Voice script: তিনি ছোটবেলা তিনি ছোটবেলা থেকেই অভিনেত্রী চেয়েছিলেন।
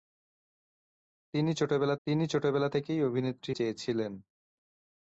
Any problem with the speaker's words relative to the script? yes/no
no